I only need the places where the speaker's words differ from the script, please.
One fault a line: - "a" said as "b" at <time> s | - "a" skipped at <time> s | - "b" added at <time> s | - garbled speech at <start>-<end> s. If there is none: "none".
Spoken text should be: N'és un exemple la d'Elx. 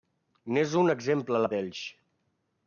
none